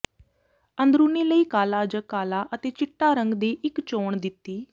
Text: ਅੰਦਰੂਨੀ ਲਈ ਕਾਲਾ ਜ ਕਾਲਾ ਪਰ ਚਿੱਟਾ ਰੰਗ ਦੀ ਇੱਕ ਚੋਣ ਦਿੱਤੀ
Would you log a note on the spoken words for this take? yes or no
yes